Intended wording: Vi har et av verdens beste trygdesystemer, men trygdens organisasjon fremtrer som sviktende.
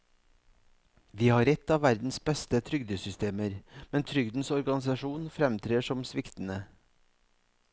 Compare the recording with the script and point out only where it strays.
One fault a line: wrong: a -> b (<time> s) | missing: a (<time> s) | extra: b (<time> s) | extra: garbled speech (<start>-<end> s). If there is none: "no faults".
no faults